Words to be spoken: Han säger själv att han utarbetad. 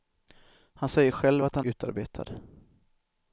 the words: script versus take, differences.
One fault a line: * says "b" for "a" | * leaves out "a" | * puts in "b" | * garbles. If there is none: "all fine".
all fine